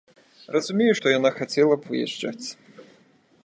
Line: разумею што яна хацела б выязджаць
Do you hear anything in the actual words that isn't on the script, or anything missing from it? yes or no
no